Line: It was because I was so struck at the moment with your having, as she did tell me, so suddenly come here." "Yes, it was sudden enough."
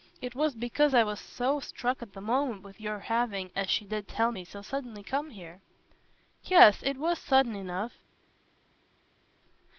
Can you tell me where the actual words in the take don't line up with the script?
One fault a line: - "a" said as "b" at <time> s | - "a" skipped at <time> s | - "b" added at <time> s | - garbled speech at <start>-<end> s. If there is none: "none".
none